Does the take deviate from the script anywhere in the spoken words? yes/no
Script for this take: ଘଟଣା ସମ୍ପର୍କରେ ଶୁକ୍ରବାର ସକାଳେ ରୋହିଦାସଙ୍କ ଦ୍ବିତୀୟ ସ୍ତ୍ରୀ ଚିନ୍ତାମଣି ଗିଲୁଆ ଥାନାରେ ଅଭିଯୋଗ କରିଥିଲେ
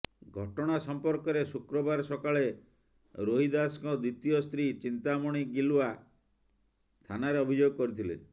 no